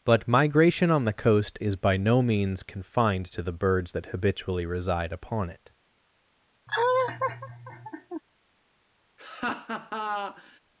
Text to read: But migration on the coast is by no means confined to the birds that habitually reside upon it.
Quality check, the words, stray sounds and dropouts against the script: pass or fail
fail